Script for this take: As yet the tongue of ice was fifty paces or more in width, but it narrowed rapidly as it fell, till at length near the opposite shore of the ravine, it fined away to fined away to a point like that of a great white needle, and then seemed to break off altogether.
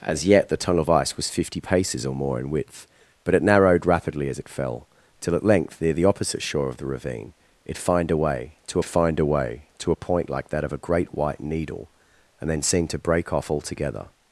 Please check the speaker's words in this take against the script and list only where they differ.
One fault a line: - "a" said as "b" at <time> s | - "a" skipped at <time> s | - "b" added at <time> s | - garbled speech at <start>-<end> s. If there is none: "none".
none